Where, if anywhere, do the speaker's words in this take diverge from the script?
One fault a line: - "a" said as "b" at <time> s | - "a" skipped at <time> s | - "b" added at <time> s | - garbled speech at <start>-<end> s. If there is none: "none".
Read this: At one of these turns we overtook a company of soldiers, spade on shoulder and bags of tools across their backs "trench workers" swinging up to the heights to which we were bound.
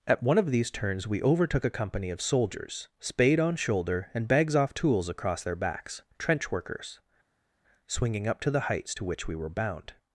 - "of" said as "off" at 4.5 s